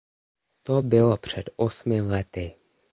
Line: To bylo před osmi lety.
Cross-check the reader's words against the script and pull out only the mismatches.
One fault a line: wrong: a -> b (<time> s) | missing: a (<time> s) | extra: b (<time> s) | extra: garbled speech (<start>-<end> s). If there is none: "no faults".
no faults